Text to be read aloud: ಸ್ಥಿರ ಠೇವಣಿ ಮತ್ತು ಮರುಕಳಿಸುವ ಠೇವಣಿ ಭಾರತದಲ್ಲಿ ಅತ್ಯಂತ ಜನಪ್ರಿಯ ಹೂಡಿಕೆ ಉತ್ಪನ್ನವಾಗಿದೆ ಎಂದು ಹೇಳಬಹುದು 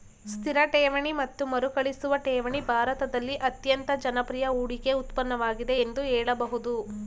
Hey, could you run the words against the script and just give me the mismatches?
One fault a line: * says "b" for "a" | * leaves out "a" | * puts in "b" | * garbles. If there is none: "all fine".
all fine